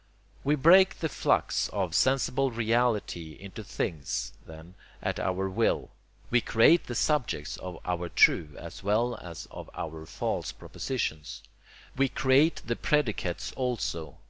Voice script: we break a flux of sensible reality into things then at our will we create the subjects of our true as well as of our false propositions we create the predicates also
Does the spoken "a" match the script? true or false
false